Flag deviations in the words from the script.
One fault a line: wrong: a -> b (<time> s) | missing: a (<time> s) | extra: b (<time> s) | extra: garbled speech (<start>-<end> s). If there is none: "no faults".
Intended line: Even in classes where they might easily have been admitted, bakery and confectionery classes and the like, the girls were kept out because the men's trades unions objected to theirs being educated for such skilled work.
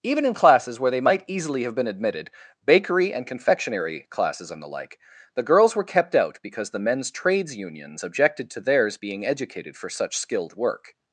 no faults